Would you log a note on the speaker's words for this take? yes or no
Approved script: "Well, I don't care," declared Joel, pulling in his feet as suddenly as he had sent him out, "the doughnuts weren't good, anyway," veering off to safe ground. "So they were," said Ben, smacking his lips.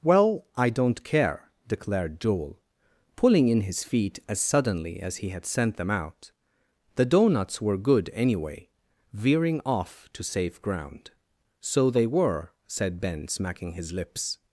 yes